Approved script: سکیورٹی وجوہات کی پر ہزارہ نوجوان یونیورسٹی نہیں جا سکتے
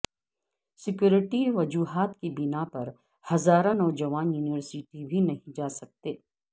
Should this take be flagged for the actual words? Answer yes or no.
yes